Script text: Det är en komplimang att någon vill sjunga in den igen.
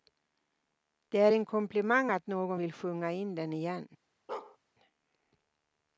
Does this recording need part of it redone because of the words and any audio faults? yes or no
yes